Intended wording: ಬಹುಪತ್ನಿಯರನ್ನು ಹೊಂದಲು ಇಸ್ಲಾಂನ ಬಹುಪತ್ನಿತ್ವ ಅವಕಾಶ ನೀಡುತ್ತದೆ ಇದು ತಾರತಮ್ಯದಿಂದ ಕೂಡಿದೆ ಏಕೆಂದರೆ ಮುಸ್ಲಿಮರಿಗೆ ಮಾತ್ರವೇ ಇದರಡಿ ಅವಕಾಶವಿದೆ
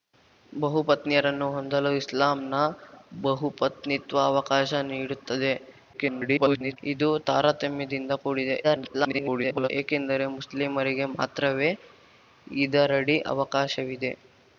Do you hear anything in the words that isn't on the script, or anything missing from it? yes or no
yes